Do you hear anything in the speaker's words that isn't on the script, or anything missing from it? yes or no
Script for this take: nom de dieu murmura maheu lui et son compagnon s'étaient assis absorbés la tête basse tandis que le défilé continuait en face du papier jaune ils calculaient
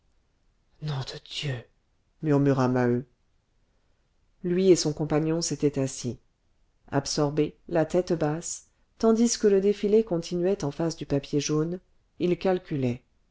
no